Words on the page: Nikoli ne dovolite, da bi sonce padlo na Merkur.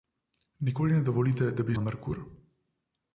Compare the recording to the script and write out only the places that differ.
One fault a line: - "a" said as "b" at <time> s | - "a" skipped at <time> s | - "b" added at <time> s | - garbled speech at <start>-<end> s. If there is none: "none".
- "sonce padlo" skipped at 1.8 s